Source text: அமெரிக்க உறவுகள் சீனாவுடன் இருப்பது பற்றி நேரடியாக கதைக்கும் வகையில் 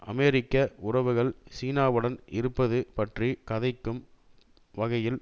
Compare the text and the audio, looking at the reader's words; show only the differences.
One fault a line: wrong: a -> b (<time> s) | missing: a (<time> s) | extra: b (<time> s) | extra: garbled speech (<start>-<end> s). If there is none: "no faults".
missing: நேரடியாக (3.3 s)